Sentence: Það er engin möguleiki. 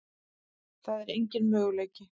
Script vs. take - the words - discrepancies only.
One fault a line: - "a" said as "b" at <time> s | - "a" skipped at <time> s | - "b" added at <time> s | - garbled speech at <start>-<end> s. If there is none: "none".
none